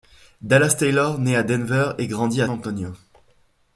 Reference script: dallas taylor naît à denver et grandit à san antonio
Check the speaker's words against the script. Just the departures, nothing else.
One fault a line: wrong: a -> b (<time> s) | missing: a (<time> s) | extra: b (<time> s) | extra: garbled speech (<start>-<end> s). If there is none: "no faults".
missing: san (2.5 s)